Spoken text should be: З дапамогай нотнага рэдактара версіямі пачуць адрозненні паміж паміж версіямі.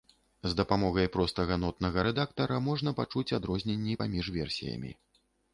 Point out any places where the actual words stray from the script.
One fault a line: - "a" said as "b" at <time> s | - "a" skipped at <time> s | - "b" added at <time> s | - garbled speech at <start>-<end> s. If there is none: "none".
- "простага" added at 1.1 s
- "версіямі" said as "можна" at 2.7 s
- "паміж" skipped at 4.2 s